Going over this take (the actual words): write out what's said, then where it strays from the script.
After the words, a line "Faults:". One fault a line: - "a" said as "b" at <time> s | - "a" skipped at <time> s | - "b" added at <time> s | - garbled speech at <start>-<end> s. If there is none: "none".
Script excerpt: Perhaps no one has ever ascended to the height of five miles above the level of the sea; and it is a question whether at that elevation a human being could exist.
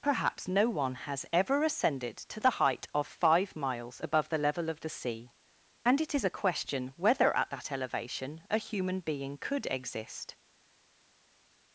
Perhaps no one has ever ascended to the height of five miles above the level of the sea; and it is a question whether at that elevation a human being could exist.
Faults:
none